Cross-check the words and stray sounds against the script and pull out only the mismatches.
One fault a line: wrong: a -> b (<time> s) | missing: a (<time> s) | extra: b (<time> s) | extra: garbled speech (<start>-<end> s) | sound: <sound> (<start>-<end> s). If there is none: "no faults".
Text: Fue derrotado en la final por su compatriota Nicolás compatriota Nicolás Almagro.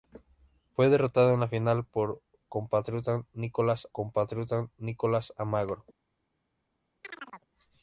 sound: chirp (7.0-7.5 s)